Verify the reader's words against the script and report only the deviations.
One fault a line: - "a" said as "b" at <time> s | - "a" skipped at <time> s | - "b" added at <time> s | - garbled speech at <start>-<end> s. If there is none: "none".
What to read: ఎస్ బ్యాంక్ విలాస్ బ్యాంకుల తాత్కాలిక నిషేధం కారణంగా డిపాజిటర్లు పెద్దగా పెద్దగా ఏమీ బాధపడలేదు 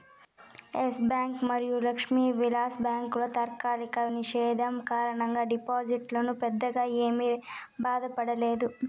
- "మరియు లక్ష్మీ" added at 1.5 s
- "పెద్దగా" skipped at 6.9 s